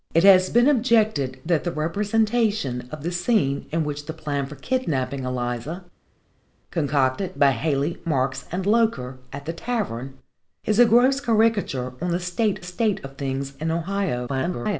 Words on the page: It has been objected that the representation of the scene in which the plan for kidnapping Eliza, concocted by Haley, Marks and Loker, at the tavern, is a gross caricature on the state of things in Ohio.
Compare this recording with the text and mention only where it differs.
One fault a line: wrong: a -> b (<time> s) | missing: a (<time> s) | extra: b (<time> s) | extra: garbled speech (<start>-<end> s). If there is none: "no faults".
extra: state (12.6 s)
extra: garbled speech (14.3-14.8 s)